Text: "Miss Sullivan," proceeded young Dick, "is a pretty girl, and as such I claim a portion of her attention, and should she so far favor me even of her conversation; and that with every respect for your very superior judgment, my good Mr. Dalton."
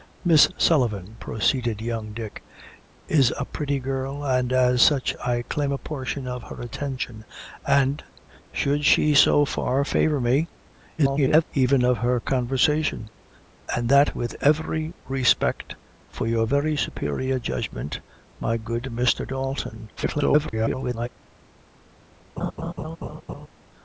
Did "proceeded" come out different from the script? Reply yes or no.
no